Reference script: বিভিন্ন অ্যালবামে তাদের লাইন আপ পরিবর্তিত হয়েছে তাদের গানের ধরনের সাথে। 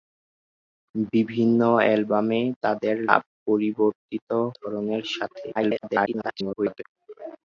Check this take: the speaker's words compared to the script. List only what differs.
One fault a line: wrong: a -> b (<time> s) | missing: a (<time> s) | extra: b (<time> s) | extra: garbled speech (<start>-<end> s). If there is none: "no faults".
missing: লাইন (3.0 s)
missing: হয়েছে তাদের গানের (4.3 s)
extra: garbled speech (5.5-6.8 s)